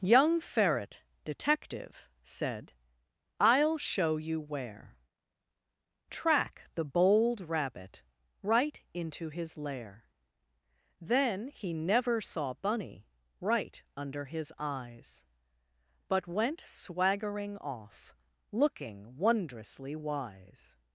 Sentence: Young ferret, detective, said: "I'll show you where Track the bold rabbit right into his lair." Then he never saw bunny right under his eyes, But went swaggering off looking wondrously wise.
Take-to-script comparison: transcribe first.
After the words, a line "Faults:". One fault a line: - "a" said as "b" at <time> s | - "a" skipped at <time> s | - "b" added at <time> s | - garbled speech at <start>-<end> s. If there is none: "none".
Young ferret, detective, said: "I'll show you where Track the bold rabbit right into his lair." Then he never saw bunny right under his eyes, But went swaggering off looking wondrously wise.
Faults:
none